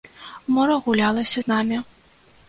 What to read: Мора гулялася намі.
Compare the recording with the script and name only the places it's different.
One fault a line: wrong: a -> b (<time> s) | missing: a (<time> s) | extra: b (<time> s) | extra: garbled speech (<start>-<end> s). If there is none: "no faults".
extra: з (1.4 s)